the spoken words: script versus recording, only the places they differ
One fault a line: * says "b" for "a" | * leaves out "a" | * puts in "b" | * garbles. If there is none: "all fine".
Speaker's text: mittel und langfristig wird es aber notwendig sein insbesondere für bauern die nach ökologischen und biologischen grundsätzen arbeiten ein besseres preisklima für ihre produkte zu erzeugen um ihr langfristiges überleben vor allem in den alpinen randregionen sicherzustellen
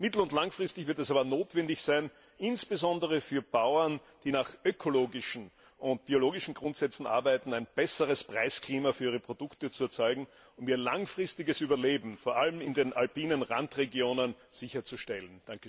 all fine